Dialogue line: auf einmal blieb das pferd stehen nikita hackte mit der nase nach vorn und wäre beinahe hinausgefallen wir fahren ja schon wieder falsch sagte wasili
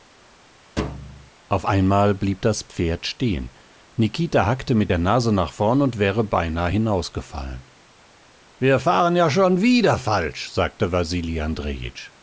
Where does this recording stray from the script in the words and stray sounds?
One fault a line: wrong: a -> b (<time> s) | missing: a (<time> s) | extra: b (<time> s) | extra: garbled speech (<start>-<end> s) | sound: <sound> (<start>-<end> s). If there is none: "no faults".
sound: thud (0.8-1.3 s)